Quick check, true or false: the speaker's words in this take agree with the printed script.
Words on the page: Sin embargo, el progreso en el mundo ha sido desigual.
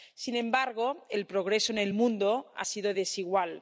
true